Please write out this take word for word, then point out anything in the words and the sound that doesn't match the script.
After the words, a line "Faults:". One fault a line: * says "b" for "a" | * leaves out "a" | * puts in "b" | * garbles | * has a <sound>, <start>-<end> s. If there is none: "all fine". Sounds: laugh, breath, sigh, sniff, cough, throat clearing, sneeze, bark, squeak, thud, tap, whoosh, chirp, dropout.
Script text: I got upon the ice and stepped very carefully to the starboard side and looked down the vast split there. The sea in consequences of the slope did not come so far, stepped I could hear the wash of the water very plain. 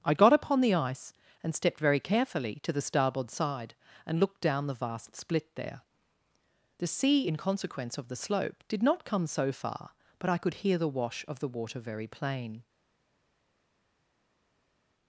I got upon the ice and stepped very carefully to the starboard side and looked down the vast split there. The sea in consequence of the slope did not come so far, but I could hear the wash of the water very plain.
Faults:
* says "consequence" for "consequences"
* says "but" for "stepped"